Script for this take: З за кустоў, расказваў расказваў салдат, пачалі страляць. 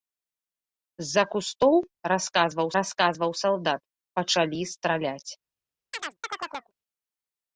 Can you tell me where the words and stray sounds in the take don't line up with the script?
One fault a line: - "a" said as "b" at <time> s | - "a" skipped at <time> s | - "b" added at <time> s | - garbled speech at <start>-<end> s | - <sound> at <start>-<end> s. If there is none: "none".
- chirp at 5.9-6.7 s